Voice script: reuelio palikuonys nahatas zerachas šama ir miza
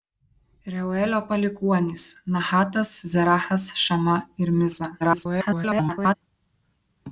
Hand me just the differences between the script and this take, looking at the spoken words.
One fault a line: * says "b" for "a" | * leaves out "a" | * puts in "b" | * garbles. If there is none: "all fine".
* garbles